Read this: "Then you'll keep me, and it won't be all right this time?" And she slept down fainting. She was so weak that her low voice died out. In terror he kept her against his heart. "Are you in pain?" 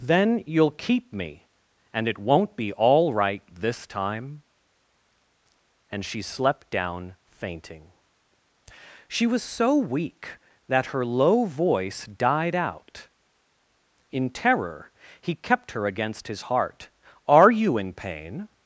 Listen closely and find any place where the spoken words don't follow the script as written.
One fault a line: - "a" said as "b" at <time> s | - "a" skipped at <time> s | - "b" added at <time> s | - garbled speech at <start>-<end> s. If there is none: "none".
none